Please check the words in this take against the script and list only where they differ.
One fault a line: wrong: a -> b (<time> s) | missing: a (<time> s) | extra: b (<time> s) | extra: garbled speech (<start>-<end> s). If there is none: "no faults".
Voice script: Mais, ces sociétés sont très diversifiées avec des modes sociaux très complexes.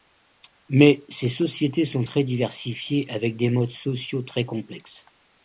no faults